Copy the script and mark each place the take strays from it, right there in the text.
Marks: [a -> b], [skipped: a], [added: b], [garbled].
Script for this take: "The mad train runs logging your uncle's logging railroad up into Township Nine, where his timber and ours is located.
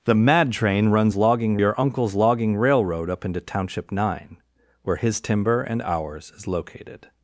"The mad train runs logging your uncle's logging railroad up into Township Nine, where his timber and ours is located.